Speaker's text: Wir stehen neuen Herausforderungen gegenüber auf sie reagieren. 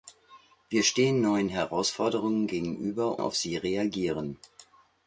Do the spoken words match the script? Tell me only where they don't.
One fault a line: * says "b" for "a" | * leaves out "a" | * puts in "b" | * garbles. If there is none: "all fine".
all fine